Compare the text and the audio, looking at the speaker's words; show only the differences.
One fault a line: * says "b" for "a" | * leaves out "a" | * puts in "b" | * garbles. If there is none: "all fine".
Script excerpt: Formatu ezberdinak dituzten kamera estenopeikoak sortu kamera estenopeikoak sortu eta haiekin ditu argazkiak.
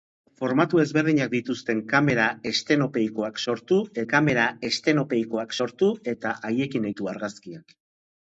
all fine